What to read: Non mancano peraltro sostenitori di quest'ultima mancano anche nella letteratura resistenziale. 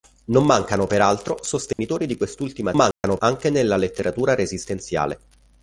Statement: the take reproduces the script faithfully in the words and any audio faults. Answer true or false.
false